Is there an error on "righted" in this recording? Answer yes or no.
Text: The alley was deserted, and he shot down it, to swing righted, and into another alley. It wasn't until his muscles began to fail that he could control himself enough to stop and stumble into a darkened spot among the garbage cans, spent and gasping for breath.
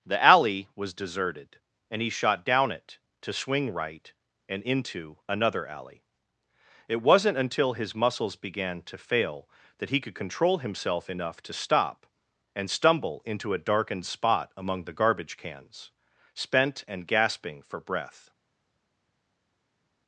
yes